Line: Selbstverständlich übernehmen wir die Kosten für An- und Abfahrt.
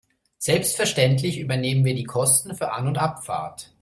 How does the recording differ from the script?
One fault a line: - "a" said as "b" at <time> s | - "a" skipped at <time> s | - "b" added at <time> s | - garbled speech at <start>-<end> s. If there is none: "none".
none